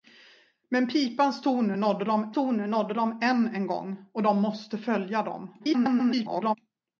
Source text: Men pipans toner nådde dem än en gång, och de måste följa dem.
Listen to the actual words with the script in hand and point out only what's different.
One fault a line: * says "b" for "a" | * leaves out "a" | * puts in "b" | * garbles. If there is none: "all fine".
* puts in "toner nådde dem"
* garbles